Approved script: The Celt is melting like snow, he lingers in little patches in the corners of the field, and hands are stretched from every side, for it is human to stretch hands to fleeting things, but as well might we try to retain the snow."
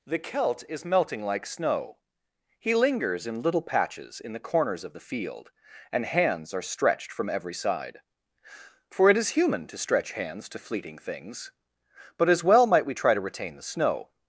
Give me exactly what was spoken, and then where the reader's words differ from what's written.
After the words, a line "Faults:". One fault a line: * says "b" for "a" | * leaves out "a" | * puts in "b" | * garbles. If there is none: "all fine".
The Celt is melting like snow, he lingers in little patches in the corners of the field, and hands are stretched from every side, for it is human to stretch hands to fleeting things, but as well might we try to retain the snow."
Faults:
all fine